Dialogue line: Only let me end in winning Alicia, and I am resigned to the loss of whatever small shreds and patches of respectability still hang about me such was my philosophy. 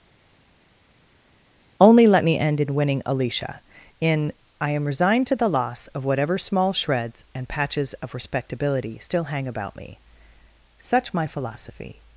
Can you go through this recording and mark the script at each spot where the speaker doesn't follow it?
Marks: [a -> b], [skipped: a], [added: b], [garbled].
Only let me end in winning Alicia, [and -> in] I am resigned to the loss of whatever small shreds and patches of respectability still hang about me such [skipped: was] my philosophy.